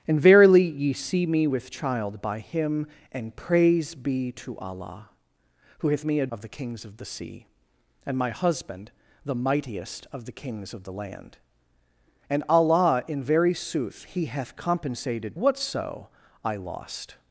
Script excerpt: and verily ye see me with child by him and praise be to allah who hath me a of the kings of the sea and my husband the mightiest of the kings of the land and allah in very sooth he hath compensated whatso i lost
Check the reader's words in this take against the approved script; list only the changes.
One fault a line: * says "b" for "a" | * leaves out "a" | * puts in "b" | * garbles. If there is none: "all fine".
all fine